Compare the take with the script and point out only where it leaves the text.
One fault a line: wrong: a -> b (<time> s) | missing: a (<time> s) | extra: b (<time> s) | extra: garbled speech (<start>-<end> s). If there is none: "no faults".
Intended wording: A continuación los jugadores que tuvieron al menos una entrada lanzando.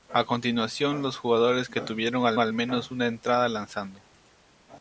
extra: al (2.4 s)